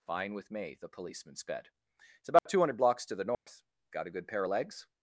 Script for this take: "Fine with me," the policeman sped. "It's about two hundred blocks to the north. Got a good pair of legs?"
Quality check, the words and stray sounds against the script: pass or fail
fail